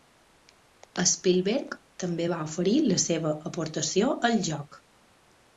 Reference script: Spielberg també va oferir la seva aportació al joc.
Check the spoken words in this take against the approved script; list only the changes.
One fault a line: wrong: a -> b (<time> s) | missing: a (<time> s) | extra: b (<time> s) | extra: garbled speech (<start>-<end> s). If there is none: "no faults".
no faults